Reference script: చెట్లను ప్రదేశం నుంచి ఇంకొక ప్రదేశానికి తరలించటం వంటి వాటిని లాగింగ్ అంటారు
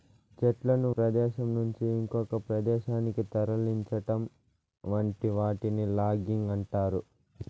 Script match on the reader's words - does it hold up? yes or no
yes